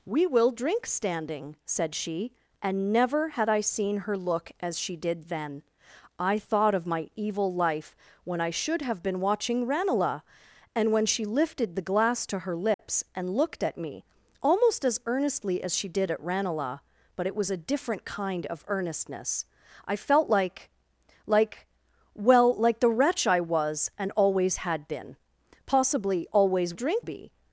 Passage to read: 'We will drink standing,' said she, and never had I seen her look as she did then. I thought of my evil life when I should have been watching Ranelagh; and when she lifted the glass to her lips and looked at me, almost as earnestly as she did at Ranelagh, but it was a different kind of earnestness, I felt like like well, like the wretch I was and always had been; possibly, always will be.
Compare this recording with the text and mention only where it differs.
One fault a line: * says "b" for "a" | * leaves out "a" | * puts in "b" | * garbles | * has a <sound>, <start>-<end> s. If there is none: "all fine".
* has a dropout, 12.7-12.8 s
* says "drink" for "will"